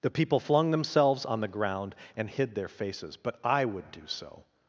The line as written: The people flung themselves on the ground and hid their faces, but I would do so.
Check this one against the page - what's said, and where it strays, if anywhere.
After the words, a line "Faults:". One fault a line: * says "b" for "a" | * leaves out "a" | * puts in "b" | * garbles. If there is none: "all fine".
The people flung themselves on the ground and hid their faces, but I would do so.
Faults:
all fine